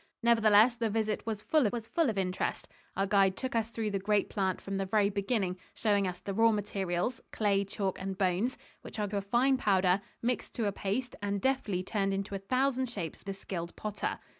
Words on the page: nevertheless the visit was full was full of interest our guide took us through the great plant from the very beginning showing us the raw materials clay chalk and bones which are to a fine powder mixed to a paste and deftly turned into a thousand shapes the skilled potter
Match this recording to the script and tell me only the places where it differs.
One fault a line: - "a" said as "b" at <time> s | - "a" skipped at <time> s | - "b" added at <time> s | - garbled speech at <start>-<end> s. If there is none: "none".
none